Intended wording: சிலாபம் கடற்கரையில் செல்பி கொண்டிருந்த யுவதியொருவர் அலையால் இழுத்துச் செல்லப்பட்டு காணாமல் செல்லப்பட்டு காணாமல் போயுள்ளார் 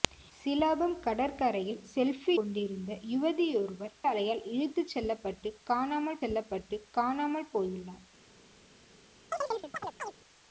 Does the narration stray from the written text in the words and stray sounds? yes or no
yes